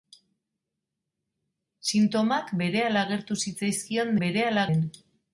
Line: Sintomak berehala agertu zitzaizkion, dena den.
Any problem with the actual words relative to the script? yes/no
yes